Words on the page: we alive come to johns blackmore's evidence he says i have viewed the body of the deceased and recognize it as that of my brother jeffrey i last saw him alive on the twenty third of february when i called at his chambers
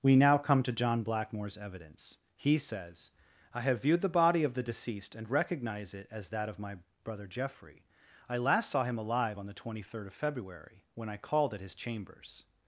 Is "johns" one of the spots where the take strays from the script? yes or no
yes